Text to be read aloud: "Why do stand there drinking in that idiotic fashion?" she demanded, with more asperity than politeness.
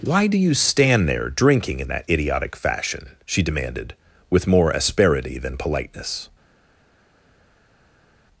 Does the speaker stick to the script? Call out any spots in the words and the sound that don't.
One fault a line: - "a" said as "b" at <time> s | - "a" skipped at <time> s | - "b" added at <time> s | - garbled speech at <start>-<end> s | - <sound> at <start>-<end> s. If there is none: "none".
- "you" added at 0.3 s